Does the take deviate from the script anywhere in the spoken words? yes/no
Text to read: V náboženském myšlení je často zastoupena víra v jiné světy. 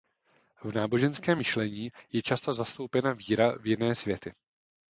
no